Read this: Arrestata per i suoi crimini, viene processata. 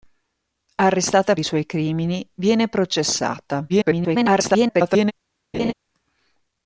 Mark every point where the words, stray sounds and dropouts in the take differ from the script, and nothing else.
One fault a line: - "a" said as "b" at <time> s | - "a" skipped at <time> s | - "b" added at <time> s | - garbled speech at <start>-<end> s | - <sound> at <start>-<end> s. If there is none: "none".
- "per" skipped at 1.4 s
- garbled speech at 3.7-5.1 s
- laugh at 5.5-5.7 s